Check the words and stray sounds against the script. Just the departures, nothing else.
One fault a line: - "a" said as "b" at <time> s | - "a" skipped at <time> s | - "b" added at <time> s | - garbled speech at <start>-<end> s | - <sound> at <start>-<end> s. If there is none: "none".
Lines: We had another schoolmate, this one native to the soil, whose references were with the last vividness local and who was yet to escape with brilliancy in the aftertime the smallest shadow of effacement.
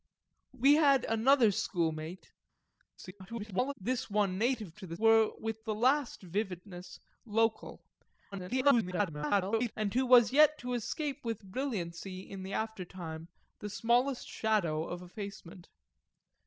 - garbled speech at 3.0-3.7 s
- "soil whose references" skipped at 5.0 s
- garbled speech at 8.3-9.7 s